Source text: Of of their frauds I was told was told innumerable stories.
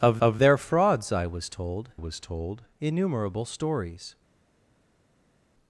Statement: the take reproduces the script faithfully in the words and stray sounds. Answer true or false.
true